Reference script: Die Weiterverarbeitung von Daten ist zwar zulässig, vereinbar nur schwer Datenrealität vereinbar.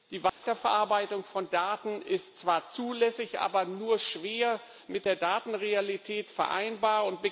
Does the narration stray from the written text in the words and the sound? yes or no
yes